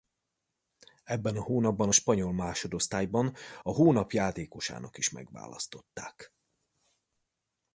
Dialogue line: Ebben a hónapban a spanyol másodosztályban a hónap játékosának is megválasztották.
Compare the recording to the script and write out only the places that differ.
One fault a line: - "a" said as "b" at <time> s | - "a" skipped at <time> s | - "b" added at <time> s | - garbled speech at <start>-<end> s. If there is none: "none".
none